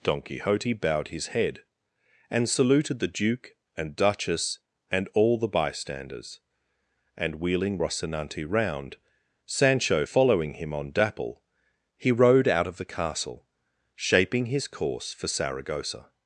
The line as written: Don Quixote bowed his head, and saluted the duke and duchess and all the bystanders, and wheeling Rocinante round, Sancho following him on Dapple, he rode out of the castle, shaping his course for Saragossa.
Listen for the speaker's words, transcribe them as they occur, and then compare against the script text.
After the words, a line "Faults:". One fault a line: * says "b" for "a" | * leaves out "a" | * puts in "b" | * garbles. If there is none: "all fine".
Don Quixote bowed his head, and saluted the duke and duchess and all the bystanders, and wheeling Rocinante round, Sancho following him on Dapple, he rode out of the castle, shaping his course for Saragossa.
Faults:
all fine